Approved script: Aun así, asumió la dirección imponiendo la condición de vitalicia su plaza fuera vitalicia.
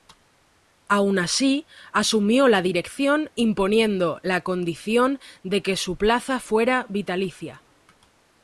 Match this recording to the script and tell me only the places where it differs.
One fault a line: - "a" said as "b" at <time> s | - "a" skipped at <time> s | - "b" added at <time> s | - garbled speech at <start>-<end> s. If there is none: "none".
- "vitalicia" said as "que" at 5.6 s